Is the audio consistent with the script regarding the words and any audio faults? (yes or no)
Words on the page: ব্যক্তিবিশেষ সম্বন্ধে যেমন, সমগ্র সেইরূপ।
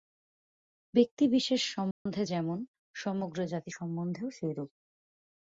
no